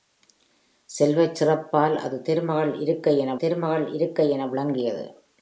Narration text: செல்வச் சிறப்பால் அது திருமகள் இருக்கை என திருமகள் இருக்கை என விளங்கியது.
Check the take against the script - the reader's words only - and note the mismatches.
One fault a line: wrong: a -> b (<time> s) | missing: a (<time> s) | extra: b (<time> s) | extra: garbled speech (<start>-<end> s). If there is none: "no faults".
no faults